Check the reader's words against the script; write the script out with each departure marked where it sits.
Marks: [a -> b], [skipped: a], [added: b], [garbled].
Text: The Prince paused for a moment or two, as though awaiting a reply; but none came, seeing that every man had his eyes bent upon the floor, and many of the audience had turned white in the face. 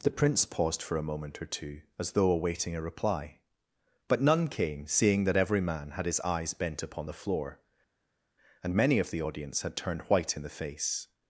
The Prince paused for a moment or two, as though awaiting a reply; but none came, seeing that every man had his eyes bent upon the floor, and many of the audience had turned white in the face.